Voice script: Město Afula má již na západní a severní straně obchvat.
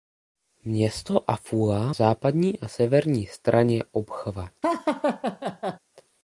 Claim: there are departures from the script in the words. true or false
true